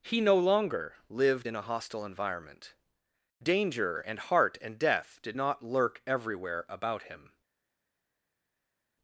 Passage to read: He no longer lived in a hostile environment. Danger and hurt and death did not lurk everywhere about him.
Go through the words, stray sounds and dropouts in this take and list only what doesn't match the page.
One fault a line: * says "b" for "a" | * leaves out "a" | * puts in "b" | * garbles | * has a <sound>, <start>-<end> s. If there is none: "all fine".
* says "heart" for "hurt"